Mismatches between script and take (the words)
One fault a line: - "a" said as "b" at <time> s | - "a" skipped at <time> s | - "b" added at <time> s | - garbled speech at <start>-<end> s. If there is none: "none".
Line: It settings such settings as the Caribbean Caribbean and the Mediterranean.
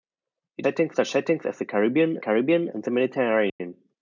none